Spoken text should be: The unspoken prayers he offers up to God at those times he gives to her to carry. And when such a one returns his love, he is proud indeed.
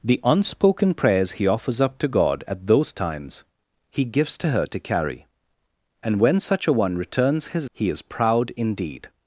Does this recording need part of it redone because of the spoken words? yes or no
yes